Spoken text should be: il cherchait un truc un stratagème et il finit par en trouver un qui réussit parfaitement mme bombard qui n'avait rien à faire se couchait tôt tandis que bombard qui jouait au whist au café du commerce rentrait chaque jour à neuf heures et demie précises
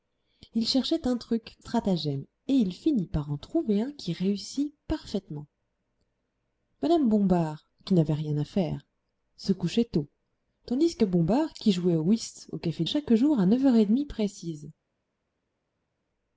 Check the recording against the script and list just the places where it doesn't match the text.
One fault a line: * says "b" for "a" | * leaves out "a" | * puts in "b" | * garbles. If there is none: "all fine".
* leaves out "un"
* leaves out "du commerce rentrait"